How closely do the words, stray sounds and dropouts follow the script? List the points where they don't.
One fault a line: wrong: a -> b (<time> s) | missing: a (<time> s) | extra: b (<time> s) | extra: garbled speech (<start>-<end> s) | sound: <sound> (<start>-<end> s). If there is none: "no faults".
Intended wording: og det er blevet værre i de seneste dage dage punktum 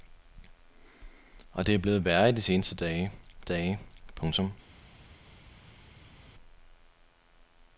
no faults